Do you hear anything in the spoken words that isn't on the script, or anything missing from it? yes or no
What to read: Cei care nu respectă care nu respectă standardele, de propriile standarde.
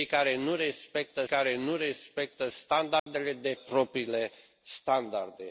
no